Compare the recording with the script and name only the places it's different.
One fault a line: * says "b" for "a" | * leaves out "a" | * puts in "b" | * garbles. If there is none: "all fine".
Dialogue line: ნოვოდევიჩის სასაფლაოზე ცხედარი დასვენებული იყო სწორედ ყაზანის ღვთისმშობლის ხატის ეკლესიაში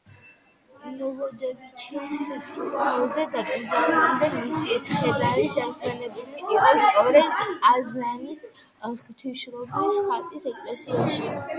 * puts in "დაკრძალვამდე მისი"